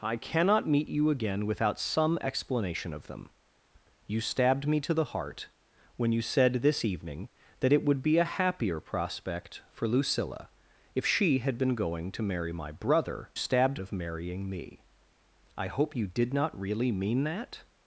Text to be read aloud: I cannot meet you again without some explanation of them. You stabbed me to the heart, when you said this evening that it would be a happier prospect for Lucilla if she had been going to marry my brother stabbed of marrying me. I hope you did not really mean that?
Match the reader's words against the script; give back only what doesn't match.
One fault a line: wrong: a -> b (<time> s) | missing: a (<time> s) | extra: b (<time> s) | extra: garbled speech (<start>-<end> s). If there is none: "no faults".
no faults